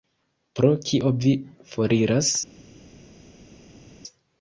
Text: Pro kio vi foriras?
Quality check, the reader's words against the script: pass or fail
pass